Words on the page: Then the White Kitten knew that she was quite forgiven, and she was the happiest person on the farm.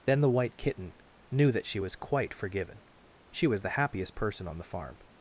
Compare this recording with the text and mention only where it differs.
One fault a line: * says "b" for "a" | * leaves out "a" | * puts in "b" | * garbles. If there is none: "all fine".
* leaves out "and"